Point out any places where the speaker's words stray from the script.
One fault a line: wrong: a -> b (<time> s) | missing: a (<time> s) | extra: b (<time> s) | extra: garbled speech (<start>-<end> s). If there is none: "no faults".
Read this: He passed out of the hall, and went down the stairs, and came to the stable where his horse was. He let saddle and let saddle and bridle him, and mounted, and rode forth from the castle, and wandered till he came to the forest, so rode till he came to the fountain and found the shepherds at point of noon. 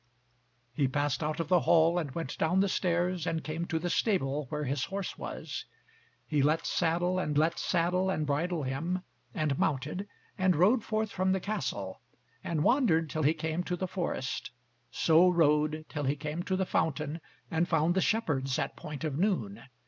no faults